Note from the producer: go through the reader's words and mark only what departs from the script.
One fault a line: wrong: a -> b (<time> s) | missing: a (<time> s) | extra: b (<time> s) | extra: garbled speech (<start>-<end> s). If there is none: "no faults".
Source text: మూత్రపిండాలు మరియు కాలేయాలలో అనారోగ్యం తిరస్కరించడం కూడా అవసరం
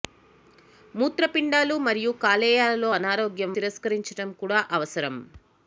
no faults